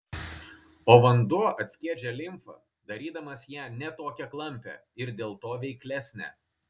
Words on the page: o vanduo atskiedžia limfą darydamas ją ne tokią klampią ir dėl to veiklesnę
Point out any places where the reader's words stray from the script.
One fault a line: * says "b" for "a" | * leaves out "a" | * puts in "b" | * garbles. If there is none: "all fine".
all fine